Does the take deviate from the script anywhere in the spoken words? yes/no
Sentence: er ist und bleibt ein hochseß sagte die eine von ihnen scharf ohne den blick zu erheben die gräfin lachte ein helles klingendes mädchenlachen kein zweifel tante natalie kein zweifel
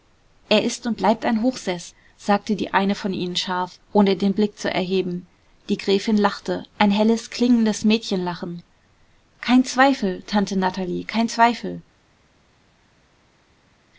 no